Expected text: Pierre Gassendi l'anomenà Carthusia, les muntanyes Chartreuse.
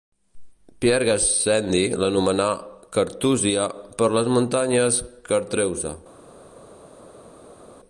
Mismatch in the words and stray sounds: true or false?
true